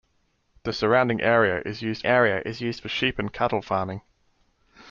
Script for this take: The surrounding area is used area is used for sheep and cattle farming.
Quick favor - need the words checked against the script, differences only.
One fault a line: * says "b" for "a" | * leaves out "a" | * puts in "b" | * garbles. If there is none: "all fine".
all fine